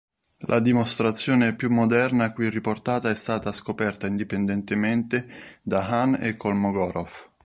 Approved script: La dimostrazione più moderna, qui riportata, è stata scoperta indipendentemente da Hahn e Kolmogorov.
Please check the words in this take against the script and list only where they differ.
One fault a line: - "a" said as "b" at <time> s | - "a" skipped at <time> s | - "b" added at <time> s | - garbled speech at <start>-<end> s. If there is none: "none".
none